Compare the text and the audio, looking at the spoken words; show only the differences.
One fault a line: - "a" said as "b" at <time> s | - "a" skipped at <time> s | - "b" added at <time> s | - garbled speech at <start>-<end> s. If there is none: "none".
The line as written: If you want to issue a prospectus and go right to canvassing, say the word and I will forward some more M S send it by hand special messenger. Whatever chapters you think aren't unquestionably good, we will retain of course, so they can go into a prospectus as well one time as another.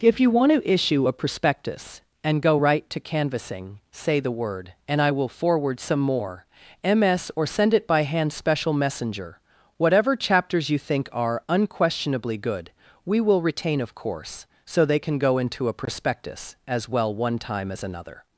- "or" added at 7.3 s
- "aren't" said as "are" at 11.1 s